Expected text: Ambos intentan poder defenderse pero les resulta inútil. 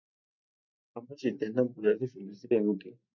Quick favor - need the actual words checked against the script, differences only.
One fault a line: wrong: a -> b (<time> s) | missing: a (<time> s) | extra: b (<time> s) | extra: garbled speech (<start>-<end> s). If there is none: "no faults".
missing: pero les resulta (2.5 s)